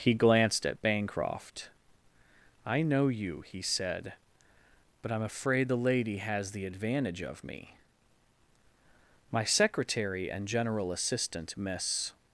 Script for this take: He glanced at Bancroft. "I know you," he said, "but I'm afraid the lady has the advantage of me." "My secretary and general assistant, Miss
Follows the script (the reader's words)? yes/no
yes